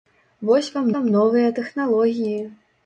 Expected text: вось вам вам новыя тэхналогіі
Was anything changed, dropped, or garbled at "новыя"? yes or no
no